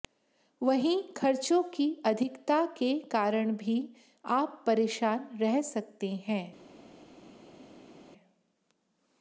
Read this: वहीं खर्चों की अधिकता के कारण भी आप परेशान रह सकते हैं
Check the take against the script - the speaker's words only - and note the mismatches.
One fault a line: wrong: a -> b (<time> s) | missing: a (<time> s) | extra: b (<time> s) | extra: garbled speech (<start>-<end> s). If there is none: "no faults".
no faults